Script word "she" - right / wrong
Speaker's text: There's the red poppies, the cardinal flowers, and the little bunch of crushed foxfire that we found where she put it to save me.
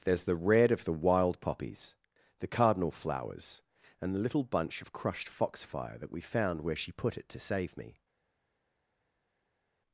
right